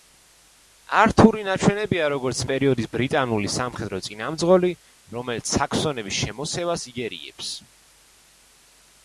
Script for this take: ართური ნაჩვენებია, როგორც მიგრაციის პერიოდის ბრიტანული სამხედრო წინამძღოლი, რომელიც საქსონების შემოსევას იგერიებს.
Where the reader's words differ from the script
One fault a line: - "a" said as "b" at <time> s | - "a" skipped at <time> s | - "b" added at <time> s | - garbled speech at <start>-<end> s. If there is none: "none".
- "მიგრაციის" skipped at 2.4 s